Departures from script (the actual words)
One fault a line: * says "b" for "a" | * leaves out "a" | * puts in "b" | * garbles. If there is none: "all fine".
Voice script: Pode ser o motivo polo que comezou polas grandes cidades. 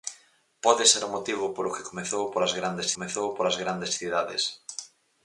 * puts in "comezou polas grandes"